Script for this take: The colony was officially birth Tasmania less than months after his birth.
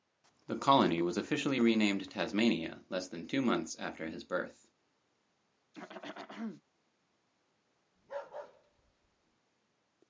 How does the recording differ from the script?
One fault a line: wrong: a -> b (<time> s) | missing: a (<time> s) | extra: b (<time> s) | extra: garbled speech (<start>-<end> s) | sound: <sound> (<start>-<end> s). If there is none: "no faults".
wrong: birth -> renamed (1.6 s)
extra: two (3.3 s)
sound: throat clearing (5.7-6.6 s)
sound: bark (8.0-9.4 s)